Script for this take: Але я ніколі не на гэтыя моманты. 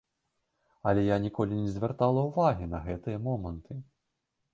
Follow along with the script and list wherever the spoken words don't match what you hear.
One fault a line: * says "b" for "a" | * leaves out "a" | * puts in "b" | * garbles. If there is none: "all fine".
* puts in "звяртала ўвагі"